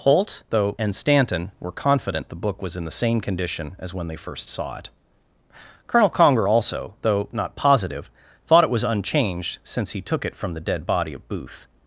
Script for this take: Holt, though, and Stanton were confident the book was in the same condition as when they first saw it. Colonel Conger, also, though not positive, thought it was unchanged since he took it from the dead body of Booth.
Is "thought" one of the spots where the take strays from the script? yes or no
no